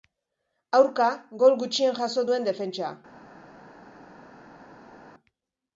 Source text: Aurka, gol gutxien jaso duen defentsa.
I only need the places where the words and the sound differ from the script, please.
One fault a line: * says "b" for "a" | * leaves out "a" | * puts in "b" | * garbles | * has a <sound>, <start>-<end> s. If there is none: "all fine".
all fine